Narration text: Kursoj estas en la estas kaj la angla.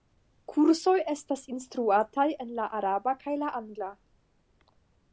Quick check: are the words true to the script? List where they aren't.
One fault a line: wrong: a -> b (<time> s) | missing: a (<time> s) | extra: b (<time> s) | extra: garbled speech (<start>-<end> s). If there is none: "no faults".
extra: instruataj (1.6 s)
wrong: estas -> araba (2.8 s)